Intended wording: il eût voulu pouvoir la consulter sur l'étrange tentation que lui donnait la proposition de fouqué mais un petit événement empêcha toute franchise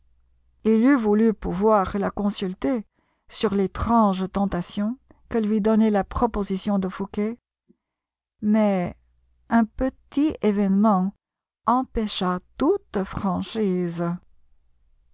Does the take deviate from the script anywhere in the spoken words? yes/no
no